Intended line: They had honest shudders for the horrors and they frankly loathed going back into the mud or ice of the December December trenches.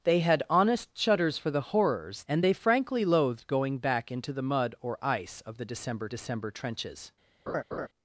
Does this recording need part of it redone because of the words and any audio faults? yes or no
yes